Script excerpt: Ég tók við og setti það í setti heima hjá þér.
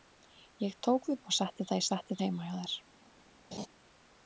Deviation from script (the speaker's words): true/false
false